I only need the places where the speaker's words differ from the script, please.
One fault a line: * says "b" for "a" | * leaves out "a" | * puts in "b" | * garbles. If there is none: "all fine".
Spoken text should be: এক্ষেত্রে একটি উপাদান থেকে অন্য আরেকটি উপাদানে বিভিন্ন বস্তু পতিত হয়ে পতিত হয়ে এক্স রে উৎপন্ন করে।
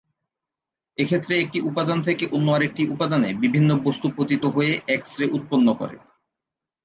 * leaves out "পতিত হয়ে"